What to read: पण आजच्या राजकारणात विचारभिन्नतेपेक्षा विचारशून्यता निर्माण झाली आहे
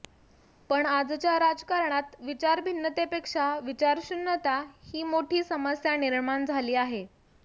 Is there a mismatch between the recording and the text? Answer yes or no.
yes